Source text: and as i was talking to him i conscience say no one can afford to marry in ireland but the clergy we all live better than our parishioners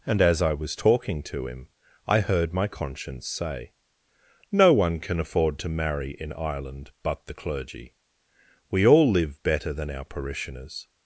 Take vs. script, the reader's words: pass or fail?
fail